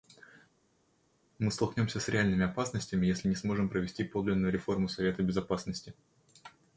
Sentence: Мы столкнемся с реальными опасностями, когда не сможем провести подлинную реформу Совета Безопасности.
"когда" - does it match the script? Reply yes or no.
no